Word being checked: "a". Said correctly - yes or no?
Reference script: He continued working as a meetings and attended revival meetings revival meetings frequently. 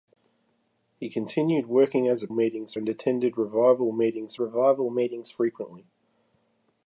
yes